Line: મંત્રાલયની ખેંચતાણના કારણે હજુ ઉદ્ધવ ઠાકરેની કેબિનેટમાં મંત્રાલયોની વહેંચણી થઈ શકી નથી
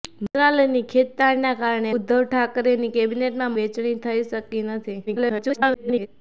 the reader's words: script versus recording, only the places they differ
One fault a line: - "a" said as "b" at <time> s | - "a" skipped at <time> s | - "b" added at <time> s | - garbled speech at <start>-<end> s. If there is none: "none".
- "હજુ" skipped at 1.9 s
- "મંત્રાલયોની" skipped at 3.6 s
- garbled speech at 5.1-6.1 s